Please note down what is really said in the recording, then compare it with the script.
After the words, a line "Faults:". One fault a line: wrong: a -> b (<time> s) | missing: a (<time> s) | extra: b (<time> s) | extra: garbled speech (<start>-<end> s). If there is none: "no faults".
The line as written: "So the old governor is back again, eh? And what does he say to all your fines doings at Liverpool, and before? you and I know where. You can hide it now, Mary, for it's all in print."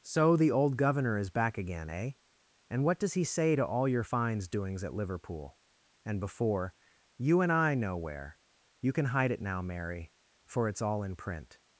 "So the old governor is back again, eh? And what does he say to all your fines doings at Liverpool, and before? you and I know where. You can hide it now, Mary, for it's all in print."
Faults:
no faults